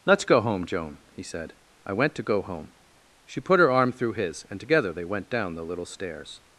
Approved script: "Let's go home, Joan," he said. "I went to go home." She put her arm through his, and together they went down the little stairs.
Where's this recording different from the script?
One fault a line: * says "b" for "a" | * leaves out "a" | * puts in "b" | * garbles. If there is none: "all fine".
all fine